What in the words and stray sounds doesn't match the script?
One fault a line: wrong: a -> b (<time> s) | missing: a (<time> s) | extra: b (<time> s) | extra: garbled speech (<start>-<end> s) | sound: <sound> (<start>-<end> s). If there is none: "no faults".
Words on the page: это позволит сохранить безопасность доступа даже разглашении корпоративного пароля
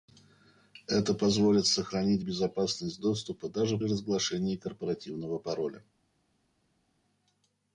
no faults